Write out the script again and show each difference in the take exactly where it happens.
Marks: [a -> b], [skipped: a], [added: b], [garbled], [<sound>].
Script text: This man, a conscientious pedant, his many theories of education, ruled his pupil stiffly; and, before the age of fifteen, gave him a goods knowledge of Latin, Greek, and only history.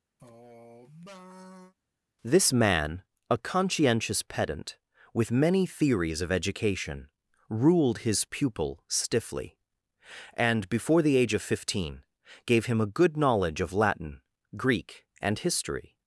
[sigh] This man, a conscientious pedant, [his -> with] many theories of education, ruled his pupil stiffly; and, before the age of fifteen, gave him a [goods -> good] knowledge of Latin, Greek, and [skipped: only] history.